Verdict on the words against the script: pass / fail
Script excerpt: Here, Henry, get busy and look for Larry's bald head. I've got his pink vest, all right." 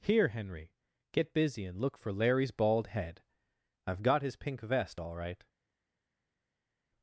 pass